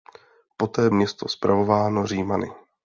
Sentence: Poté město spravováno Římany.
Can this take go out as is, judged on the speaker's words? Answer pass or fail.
pass